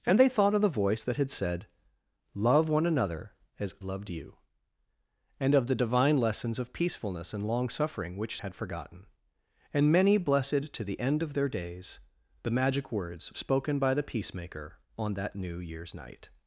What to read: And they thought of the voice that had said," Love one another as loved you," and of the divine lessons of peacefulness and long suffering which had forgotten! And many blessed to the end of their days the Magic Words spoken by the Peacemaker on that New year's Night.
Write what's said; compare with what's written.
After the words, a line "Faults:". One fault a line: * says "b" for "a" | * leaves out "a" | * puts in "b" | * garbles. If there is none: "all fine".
And they thought of the voice that had said," Love one another as loved you," and of the divine lessons of peacefulness and long suffering which had forgotten! And many blessed to the end of their days the Magic Words spoken by the Peacemaker on that New year's Night.
Faults:
all fine